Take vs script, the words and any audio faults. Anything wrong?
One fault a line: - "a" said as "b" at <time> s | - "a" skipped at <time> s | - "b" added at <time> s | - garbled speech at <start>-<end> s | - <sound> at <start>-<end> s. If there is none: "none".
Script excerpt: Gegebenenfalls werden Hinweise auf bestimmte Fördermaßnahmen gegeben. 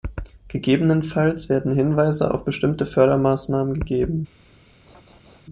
- laugh at 4.9-5.4 s